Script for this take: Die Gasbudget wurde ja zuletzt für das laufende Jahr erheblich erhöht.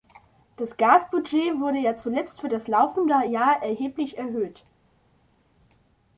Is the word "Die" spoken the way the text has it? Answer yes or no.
no